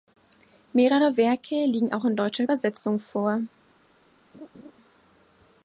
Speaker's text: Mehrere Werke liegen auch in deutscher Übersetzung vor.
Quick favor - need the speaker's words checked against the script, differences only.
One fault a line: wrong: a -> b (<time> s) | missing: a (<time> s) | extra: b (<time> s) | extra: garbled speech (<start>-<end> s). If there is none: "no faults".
no faults